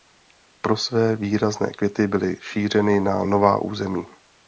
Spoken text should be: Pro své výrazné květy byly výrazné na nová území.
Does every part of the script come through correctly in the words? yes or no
no